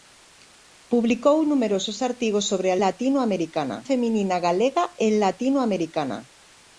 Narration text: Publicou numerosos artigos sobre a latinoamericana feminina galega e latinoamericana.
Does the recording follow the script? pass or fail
pass